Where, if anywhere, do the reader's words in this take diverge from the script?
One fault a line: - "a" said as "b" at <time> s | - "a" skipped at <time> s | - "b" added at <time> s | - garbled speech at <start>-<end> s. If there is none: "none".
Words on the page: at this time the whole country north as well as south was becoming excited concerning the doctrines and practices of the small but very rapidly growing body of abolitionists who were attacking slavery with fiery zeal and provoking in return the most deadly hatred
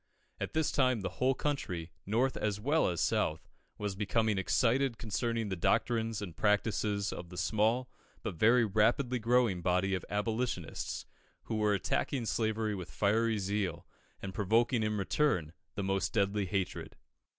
none